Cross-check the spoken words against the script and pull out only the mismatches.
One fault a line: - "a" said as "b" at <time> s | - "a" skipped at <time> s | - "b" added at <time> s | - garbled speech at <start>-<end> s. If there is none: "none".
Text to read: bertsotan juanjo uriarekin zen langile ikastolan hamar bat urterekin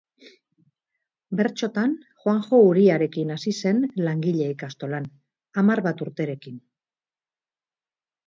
- "hasi" added at 3.4 s